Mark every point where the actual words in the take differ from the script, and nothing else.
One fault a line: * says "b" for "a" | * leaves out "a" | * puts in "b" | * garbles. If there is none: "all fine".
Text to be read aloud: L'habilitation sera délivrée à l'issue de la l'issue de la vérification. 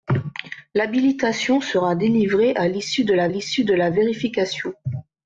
all fine